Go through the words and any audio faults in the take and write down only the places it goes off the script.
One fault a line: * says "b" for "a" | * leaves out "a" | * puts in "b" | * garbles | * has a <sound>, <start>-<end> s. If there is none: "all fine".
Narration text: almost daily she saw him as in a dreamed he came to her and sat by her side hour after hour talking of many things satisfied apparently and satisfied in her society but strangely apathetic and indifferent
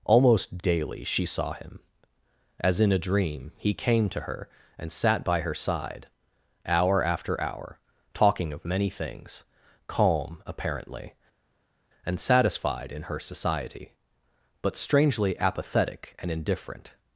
* says "dream" for "dreamed"
* says "calm" for "satisfied"